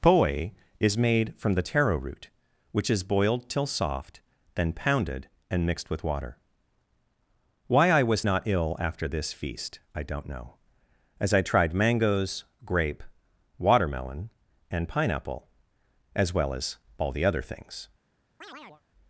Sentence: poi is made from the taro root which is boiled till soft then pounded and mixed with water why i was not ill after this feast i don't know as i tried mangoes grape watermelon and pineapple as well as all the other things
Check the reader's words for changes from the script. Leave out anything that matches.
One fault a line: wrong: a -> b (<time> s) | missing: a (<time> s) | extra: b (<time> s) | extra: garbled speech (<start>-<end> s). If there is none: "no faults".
no faults